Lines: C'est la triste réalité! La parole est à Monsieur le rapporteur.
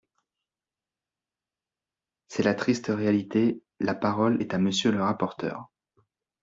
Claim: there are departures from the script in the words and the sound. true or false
false